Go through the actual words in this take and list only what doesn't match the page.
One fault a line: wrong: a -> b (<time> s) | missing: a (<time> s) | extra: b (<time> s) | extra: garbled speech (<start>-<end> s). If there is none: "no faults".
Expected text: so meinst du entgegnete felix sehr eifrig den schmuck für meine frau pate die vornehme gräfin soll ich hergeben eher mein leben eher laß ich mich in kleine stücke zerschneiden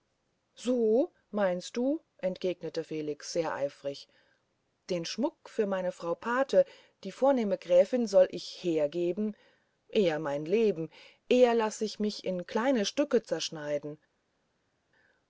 no faults